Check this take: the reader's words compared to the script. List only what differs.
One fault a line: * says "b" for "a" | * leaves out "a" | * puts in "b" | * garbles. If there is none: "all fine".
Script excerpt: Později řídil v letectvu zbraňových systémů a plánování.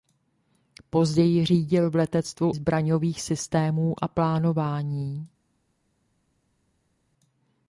all fine